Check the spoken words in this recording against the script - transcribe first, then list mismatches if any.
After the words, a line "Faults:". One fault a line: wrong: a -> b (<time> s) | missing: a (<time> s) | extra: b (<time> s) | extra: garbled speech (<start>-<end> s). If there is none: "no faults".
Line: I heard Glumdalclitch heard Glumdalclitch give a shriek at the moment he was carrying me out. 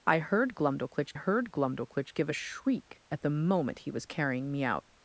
I heard Glumdalclitch heard Glumdalclitch give a shriek at the moment he was carrying me out.
Faults:
no faults